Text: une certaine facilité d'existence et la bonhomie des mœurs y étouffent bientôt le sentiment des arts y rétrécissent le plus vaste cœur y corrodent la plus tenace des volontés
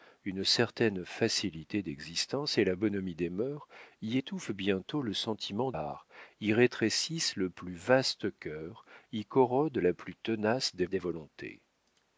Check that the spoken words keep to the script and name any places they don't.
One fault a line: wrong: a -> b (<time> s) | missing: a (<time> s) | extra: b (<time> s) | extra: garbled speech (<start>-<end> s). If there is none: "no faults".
missing: des (5.7 s)
extra: des (10.9 s)